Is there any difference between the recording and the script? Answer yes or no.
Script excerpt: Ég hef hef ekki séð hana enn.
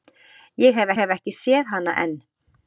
no